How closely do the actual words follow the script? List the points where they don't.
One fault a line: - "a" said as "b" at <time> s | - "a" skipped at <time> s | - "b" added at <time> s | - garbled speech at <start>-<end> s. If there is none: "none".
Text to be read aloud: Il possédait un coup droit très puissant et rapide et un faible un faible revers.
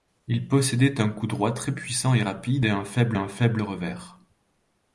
none